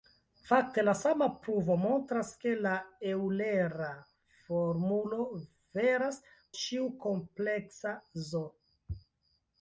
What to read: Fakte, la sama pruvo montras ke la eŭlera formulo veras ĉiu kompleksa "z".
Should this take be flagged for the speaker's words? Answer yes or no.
no